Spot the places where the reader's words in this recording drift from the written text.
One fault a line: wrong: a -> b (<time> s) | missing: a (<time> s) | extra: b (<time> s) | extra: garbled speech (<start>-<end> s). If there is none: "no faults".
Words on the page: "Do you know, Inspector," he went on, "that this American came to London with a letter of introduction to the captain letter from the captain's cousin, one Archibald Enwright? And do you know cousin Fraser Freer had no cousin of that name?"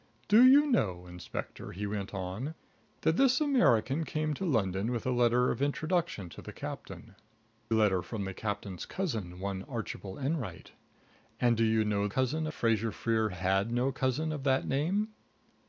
no faults